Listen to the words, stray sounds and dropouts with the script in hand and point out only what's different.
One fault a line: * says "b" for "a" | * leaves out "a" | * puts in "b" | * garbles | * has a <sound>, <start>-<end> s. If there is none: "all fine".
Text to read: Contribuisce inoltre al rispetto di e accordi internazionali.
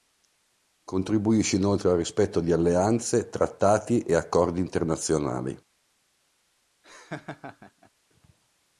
* puts in "alleanze trattati"
* has a laugh, 6.8-7.9 s